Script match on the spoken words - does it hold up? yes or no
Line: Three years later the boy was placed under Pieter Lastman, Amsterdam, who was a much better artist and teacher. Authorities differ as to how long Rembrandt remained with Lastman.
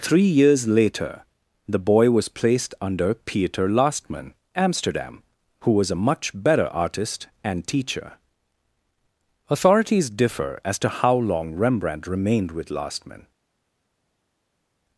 yes